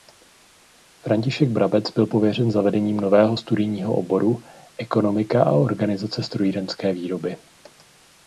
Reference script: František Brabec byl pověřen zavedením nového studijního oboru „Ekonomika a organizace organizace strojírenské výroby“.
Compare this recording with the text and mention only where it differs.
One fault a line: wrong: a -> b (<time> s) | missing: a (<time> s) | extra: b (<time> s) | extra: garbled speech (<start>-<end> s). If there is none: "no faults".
missing: organizace (6.2 s)